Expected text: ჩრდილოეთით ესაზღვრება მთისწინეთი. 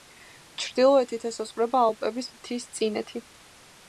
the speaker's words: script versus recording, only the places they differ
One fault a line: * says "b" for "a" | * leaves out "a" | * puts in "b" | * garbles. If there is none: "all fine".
* puts in "ალპების"